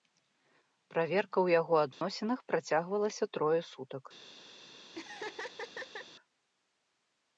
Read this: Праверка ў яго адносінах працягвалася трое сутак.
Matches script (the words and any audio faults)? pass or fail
fail